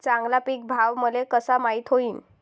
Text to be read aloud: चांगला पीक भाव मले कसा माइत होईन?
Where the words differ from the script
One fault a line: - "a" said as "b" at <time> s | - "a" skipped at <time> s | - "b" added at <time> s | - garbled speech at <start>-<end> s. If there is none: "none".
none